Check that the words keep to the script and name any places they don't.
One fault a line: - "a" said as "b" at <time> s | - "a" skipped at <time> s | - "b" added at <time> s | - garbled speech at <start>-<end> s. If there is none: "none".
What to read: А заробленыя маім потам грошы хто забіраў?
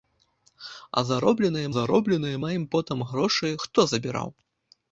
- "заробленыя" added at 1.7 s